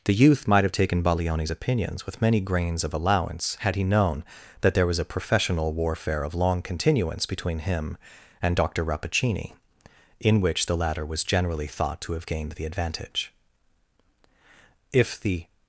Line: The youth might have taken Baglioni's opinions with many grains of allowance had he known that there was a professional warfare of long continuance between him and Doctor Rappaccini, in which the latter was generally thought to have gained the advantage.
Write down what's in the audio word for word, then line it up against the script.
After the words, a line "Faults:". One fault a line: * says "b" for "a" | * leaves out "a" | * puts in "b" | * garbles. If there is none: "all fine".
The youth might have taken Baglioni's opinions with many grains of allowance had he known that there was a professional warfare of long continuance between him and Doctor Rappaccini, in which the latter was generally thought to have gained the advantage. If the
Faults:
* puts in "If the"